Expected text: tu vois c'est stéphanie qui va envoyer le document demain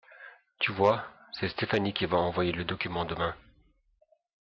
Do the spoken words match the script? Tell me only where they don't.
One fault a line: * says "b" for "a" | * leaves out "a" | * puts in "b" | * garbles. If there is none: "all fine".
all fine